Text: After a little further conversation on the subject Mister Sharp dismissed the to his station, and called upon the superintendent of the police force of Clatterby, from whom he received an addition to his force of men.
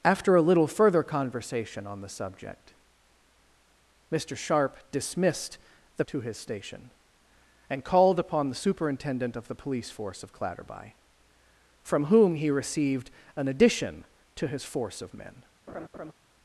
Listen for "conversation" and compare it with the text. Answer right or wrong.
right